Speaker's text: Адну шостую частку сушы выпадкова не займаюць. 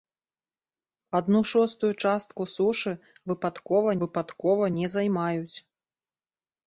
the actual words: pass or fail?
fail